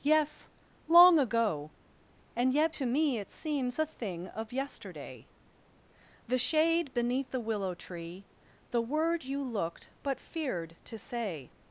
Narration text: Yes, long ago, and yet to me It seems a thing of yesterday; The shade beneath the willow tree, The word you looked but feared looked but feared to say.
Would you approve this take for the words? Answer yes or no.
no